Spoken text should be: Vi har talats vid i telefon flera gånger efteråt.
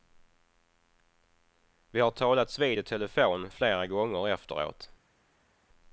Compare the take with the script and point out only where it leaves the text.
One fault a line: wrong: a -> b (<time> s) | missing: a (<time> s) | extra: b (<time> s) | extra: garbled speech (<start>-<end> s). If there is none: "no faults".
no faults